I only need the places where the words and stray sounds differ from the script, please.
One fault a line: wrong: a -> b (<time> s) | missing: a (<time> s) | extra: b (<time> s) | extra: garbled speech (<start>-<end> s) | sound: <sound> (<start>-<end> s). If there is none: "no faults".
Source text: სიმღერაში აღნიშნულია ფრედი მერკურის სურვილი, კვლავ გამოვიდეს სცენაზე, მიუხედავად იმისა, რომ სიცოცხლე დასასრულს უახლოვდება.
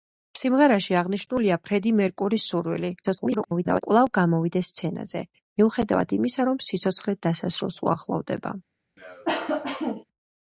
extra: garbled speech (3.0-3.8 s)
sound: cough (9.0-10.0 s)